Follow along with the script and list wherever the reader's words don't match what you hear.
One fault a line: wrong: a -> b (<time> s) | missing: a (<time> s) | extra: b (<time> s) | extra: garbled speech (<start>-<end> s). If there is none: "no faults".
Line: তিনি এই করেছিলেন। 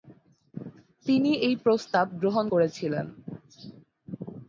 extra: প্রস্তাব গ্রহণ (1.6 s)